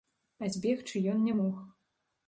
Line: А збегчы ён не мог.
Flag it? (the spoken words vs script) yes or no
no